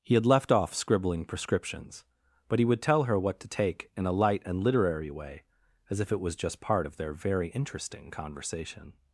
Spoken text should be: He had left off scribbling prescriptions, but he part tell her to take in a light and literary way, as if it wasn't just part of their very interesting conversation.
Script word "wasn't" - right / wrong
wrong